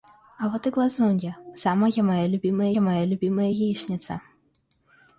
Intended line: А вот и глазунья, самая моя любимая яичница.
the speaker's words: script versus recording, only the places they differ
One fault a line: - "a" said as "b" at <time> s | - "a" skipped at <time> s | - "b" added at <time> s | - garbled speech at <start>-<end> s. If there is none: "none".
- "моя любимая" added at 2.8 s